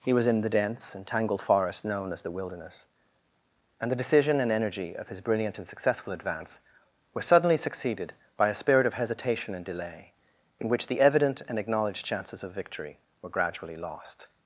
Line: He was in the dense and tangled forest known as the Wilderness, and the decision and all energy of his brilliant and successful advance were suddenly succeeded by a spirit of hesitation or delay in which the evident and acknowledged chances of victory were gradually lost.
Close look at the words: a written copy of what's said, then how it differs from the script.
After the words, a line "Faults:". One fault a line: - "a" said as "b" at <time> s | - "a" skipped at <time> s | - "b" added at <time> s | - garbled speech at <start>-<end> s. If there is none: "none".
He was in the dense and tangled forest known as the Wilderness, and the decision and energy of his brilliant and successful advance were suddenly succeeded by a spirit of hesitation and delay in which the evident and acknowledged chances of victory were gradually lost.
Faults:
- "all" skipped at 4.5 s
- "or" said as "and" at 9.5 s